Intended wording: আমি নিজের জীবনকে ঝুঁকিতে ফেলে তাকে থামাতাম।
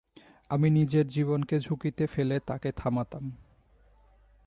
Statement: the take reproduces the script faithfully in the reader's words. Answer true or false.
true